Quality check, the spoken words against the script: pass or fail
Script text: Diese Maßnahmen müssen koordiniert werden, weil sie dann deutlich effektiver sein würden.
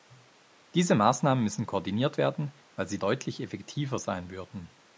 fail